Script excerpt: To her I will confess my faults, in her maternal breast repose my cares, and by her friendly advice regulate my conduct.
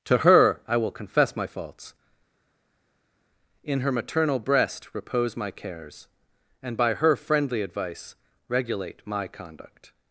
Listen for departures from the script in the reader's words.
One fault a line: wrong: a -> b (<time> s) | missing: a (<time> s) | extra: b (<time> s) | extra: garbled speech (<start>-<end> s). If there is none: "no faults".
no faults